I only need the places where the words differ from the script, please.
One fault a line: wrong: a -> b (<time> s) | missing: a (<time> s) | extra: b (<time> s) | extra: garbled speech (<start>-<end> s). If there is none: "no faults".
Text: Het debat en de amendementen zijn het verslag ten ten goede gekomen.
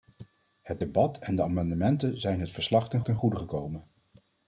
no faults